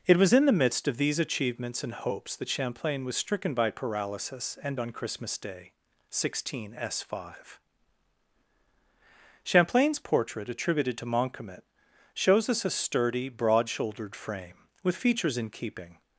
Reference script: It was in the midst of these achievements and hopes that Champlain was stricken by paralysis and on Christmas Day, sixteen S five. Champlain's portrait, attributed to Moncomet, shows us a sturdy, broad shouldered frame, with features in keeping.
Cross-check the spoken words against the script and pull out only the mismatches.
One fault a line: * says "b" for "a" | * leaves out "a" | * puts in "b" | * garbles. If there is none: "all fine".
all fine